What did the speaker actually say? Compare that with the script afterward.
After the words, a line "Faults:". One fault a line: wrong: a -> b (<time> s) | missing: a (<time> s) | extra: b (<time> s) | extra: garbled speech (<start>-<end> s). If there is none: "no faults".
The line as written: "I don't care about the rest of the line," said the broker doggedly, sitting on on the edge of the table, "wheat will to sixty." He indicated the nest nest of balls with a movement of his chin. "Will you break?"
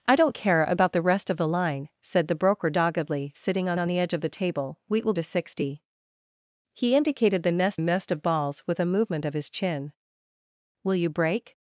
"I don't care about the rest of the line," said the broker doggedly, sitting on on the edge of the table, "wheat will to sixty." He indicated the nest nest of balls with a movement of his chin. "Will you break?"
Faults:
no faults